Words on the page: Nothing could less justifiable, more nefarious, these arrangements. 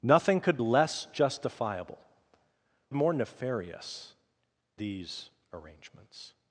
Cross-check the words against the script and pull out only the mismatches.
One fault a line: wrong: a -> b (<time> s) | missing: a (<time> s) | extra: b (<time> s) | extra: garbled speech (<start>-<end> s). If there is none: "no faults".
no faults